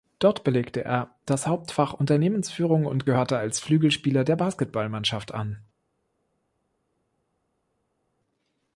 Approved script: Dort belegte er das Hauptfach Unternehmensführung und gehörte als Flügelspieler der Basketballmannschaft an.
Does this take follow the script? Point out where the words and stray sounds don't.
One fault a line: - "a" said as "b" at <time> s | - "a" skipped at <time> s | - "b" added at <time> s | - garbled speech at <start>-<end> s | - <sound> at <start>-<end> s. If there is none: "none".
none